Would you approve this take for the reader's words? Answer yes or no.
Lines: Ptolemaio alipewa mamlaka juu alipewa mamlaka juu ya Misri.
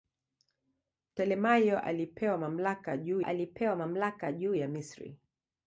yes